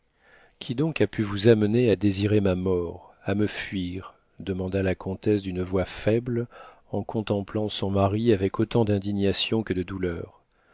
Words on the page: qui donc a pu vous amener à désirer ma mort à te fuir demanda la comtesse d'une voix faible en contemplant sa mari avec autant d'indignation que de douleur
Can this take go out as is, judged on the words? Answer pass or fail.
fail